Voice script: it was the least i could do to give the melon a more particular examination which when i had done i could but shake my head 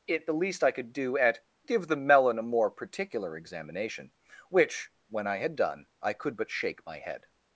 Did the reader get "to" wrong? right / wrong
wrong